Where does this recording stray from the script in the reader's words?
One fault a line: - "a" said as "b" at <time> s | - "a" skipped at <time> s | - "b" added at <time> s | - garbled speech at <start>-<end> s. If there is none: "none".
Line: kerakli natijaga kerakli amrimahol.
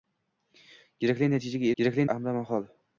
none